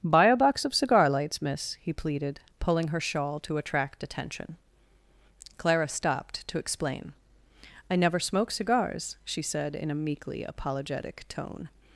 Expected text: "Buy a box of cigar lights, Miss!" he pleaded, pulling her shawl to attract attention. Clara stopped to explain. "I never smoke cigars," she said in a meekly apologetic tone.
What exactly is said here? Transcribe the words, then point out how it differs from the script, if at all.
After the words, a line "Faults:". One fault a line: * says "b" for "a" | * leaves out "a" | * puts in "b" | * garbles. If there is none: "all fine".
"Buy a box of cigar lights, Miss!" he pleaded, pulling her shawl to attract attention. Clara stopped to explain. "I never smoke cigars," she said in a meekly apologetic tone.
Faults:
all fine